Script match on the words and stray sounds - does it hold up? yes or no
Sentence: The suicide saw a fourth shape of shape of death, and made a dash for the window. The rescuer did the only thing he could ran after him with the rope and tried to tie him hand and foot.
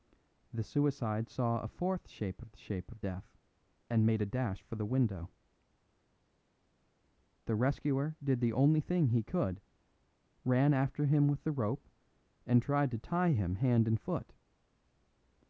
yes